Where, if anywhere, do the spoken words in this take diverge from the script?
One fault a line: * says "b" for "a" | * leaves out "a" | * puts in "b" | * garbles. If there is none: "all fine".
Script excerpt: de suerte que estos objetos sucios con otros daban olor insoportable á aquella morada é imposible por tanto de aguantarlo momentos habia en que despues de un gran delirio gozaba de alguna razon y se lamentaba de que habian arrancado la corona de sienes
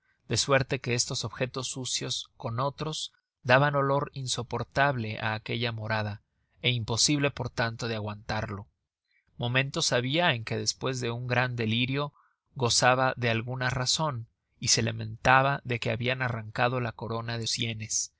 all fine